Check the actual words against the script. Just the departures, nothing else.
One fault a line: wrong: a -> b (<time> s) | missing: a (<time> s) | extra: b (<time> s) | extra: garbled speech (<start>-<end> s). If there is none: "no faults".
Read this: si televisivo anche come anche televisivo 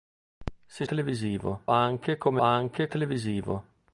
no faults